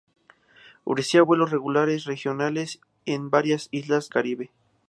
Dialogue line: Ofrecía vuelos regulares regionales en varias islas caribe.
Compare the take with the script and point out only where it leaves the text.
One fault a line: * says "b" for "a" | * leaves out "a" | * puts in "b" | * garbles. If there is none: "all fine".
all fine